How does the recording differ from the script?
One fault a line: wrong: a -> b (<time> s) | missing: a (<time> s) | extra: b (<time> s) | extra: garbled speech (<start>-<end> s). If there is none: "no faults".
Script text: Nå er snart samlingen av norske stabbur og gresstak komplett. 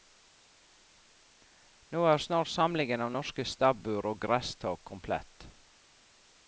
no faults